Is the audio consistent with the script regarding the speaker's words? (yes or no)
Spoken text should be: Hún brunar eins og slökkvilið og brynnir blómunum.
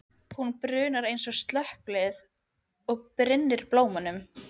yes